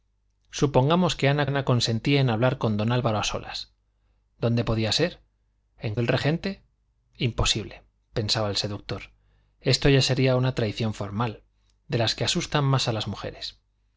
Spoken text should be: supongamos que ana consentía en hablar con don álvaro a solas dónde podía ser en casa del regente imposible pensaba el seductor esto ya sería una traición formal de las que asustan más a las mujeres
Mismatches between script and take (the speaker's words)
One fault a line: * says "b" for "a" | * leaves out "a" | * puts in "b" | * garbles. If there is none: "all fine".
* puts in "ana"
* leaves out "casa"